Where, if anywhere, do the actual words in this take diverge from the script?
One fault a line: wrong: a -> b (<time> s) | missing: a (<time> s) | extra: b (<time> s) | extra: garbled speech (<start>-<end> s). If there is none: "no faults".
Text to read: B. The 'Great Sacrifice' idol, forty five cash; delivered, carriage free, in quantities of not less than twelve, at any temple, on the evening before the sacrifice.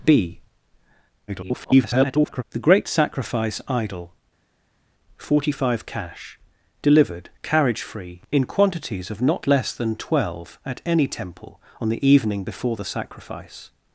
extra: garbled speech (1.3-2.4 s)